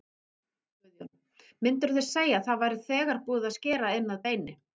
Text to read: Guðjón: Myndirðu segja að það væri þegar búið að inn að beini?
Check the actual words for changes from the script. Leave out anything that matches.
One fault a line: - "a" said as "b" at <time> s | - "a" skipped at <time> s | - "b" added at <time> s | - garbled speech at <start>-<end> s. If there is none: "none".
- "skera" added at 3.6 s